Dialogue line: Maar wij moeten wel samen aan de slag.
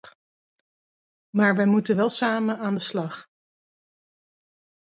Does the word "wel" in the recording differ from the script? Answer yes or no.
no